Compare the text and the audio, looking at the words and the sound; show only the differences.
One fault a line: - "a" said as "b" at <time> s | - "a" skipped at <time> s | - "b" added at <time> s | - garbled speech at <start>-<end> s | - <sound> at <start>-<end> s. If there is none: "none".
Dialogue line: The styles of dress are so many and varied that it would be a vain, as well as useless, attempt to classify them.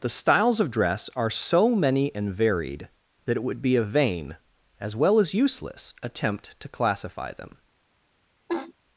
- laugh at 8.5-8.7 s